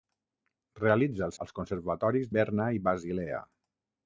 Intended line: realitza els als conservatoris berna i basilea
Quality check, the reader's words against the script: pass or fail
pass